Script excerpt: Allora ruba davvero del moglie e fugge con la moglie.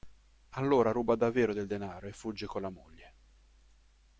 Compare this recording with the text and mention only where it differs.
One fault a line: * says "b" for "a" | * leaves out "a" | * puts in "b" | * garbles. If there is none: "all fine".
* says "denaro" for "moglie"